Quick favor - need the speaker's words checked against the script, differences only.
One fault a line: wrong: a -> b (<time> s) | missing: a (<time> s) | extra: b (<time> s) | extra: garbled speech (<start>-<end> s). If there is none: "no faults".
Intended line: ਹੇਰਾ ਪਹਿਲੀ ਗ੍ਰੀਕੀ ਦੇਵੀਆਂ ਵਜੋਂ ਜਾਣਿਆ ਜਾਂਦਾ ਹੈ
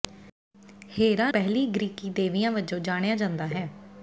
no faults